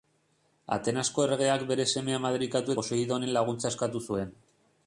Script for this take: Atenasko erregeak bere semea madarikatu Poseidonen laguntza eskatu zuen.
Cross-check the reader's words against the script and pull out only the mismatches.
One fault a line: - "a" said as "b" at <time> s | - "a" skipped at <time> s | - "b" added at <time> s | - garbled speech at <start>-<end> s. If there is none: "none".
none